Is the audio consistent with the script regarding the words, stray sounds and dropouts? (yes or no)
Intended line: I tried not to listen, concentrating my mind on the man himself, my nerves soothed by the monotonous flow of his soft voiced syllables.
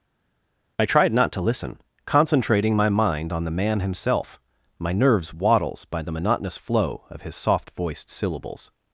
no